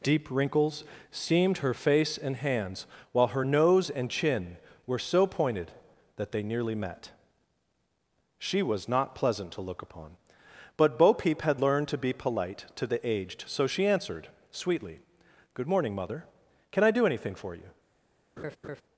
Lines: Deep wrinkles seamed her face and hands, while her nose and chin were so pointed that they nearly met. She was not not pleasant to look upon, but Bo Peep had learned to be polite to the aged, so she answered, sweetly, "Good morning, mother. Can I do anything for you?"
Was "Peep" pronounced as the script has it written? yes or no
yes